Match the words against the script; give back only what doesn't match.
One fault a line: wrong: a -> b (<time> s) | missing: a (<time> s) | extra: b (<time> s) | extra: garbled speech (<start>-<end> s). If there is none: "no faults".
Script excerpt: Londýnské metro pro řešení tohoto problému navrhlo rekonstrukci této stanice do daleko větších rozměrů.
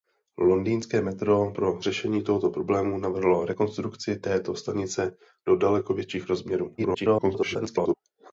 extra: garbled speech (6.8-7.9 s)